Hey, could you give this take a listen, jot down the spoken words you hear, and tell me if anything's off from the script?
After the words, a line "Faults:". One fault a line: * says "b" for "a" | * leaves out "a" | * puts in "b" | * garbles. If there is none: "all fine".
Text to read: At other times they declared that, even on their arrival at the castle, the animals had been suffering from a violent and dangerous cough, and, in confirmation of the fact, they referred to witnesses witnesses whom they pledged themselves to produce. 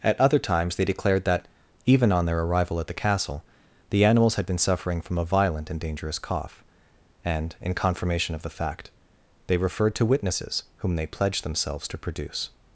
At other times they declared that, even on their arrival at the castle, the animals had been suffering from a violent and dangerous cough, and, in confirmation of the fact, they referred to witnesses whom they pledged themselves to produce.
Faults:
* leaves out "witnesses"